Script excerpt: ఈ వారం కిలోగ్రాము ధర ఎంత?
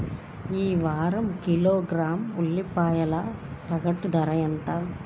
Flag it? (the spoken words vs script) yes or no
yes